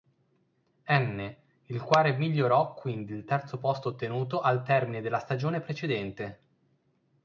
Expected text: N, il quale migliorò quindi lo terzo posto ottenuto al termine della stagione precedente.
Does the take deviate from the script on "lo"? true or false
true